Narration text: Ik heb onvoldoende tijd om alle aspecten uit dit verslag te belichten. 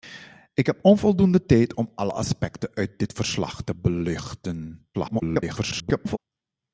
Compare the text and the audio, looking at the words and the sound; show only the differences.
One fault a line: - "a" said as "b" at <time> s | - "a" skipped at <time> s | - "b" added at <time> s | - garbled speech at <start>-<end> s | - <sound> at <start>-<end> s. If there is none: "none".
- garbled speech at 4.9-6.2 s